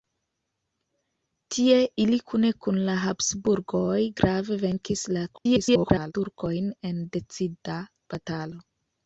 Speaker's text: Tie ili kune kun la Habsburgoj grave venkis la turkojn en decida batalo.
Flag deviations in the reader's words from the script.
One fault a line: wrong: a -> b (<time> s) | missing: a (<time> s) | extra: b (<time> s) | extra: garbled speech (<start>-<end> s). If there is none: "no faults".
extra: garbled speech (5.3-6.1 s)